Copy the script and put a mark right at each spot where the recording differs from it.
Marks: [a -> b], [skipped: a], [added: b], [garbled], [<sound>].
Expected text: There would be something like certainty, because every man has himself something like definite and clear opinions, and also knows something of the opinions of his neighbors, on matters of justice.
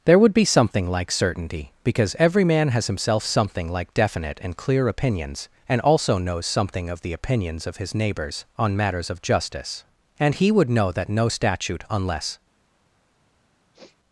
There would be something like certainty, because every man has himself something like definite and clear opinions, and also knows something of the opinions of his neighbors, on matters of justice. [added: And he would know that no statute unless] [sniff]